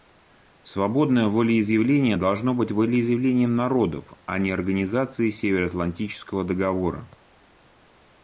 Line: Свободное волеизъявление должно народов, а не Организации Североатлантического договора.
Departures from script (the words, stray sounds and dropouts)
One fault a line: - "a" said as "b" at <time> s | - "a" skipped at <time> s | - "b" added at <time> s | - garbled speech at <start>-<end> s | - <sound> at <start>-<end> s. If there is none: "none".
- "быть волеизъявлением" added at 2.5 s